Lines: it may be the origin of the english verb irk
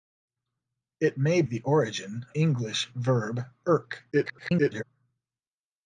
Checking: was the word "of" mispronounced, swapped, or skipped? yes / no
yes